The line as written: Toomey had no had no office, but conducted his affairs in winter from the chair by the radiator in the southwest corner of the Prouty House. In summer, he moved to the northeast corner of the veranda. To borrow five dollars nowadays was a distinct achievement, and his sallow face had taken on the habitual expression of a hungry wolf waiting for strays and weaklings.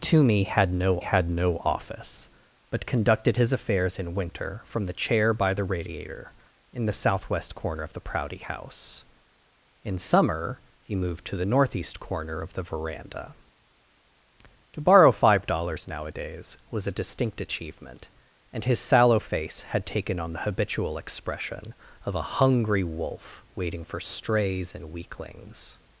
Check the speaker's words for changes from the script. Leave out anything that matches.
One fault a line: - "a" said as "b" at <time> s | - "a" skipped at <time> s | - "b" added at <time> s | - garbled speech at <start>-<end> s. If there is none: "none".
none